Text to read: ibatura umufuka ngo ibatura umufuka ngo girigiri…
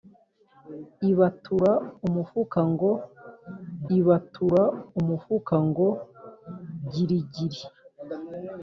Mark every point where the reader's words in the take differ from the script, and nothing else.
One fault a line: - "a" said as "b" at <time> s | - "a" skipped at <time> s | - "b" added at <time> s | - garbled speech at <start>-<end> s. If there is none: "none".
none